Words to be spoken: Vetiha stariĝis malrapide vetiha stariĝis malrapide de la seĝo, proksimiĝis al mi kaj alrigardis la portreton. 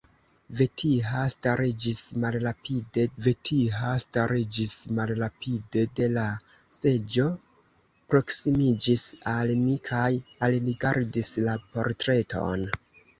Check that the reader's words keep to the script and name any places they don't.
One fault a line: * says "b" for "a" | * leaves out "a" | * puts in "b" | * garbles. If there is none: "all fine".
all fine